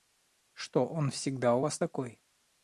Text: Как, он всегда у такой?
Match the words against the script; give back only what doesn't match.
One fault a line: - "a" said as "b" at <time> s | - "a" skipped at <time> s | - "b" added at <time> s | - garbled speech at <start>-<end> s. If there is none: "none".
- "Как" said as "Что" at 0.5 s
- "вас" added at 1.6 s